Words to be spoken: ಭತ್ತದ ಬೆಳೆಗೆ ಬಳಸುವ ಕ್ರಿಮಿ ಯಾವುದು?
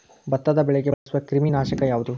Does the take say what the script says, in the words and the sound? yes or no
no